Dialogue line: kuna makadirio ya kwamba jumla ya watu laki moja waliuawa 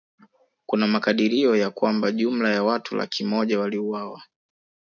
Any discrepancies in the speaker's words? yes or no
no